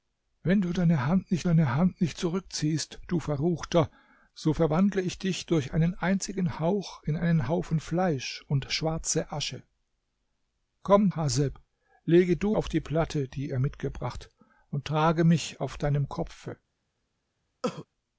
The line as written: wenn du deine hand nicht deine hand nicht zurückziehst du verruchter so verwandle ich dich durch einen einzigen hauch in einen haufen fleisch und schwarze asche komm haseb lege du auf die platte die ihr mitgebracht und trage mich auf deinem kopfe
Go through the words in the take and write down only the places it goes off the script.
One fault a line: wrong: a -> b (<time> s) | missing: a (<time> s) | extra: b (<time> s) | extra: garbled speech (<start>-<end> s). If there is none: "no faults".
no faults